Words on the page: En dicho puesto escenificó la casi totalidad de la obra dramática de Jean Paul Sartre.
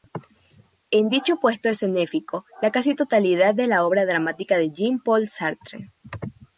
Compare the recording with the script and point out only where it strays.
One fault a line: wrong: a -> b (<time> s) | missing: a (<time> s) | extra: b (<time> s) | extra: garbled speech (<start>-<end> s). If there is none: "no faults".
no faults